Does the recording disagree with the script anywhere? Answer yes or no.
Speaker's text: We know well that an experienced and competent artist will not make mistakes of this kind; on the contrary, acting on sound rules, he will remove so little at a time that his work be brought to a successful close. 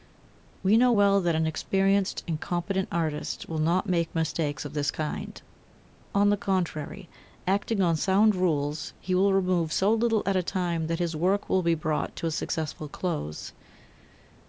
yes